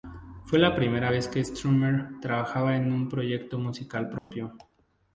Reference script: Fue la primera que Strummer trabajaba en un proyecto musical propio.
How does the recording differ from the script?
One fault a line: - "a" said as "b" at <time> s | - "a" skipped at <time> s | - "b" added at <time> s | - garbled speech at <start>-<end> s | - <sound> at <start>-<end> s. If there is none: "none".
- "vez" added at 1.1 s
- dropout at 4.2-4.3 s